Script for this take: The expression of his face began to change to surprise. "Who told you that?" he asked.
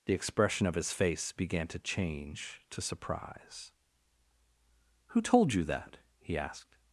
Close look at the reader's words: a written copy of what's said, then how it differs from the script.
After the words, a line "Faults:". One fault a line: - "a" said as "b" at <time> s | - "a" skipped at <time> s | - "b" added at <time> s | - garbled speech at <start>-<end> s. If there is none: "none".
The expression of his face began to change to surprise. "Who told you that?" he asked.
Faults:
none